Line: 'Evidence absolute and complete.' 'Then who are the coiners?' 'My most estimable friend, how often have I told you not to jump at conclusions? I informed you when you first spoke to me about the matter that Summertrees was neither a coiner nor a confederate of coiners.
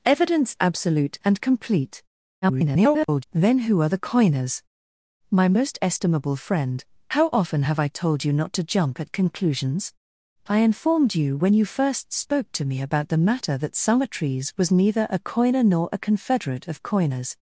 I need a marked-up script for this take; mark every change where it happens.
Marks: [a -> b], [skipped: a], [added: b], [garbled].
'Evidence absolute and complete.' [garbled] 'Then who are the coiners?' 'My most estimable friend, how often have I told you not to jump at conclusions? I informed you when you first spoke to me about the matter that Summertrees was neither a coiner nor a confederate of coiners.